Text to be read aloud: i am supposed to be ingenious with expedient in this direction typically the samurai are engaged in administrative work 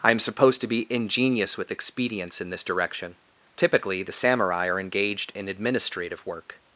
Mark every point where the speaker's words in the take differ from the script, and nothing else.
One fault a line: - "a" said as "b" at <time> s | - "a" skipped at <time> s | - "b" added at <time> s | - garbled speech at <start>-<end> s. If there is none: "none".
- "expedient" said as "expedients" at 1.7 s